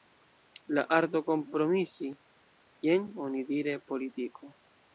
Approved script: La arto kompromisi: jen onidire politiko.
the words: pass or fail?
pass